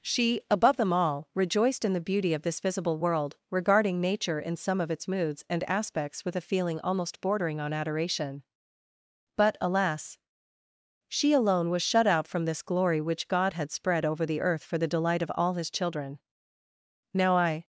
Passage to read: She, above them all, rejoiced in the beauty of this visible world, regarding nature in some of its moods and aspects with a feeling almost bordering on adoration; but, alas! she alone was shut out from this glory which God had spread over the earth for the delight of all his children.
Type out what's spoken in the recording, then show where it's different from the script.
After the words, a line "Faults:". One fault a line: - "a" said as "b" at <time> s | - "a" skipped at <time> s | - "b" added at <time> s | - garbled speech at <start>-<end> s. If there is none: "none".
She, above them all, rejoiced in the beauty of this visible world, regarding nature in some of its moods and aspects with a feeling almost bordering on adoration; but, alas! she alone was shut out from this glory which God had spread over the earth for the delight of all his children. Now I
Faults:
- "Now I" added at 17.1 s